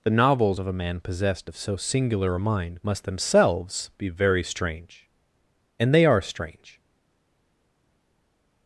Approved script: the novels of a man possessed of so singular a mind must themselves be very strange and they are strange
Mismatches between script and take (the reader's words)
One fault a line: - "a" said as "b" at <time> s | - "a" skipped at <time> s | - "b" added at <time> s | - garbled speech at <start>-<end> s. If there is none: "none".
none